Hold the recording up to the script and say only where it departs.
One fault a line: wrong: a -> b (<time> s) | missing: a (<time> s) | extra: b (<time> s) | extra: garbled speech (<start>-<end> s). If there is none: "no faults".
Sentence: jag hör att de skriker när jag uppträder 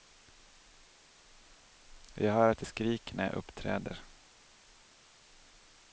no faults